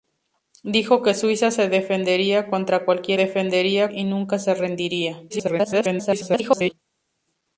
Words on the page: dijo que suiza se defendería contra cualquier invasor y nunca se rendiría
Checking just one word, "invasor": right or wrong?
wrong